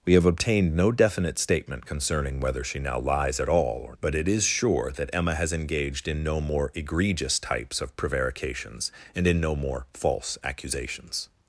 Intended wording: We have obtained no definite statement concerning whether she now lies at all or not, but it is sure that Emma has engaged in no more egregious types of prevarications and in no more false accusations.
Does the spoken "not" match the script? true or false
false